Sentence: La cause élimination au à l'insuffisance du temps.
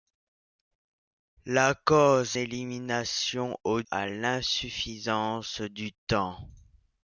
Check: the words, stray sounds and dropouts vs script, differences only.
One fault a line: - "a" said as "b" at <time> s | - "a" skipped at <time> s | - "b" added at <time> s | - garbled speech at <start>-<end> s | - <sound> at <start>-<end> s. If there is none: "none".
none